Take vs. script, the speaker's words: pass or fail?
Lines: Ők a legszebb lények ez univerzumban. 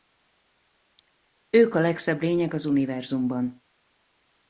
fail